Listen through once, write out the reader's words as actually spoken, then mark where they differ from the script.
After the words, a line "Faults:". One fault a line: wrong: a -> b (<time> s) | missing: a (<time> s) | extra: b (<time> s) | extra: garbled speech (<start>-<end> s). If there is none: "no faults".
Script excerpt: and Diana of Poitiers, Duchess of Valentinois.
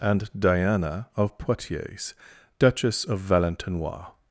and Diana of Poitiers, Duchess of Valentinois.
Faults:
no faults